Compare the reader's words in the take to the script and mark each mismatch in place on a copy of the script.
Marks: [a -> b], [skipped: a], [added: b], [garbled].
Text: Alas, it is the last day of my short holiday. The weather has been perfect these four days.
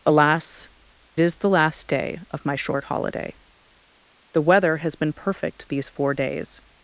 Alas, [skipped: it] is the last day of my short holiday. The weather has been perfect these four days.